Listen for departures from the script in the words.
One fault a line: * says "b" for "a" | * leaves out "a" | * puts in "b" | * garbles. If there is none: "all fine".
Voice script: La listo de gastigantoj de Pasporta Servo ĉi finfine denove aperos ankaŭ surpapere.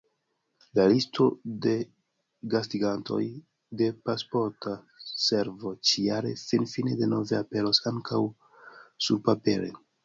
* puts in "jare"